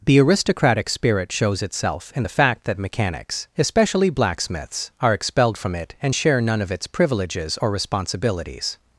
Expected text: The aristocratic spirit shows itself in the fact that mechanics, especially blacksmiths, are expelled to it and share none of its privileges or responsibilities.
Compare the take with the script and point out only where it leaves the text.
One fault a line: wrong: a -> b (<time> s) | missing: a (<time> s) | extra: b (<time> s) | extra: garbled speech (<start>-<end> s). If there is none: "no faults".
wrong: to -> from (5.6 s)